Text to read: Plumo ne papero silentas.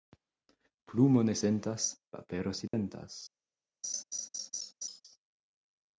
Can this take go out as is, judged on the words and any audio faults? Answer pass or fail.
fail